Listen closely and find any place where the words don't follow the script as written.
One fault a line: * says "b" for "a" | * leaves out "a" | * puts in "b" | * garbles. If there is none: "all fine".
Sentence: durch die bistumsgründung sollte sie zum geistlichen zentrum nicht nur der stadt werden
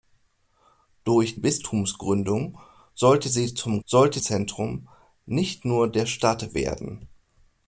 * leaves out "die"
* says "sollte" for "geistlichen"